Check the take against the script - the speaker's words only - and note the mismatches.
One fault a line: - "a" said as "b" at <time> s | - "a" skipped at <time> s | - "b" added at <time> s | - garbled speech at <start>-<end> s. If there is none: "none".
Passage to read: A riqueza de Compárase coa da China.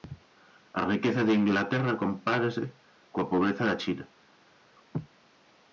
- "Inglaterra" added at 1.4 s
- "pobreza" added at 3.3 s